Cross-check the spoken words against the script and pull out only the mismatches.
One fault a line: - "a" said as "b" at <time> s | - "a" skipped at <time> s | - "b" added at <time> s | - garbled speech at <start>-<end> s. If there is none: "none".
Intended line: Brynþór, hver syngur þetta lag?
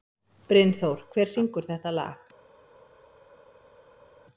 none